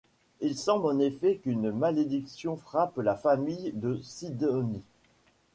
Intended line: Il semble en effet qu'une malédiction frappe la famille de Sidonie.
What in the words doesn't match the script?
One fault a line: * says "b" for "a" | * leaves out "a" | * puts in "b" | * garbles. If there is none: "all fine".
all fine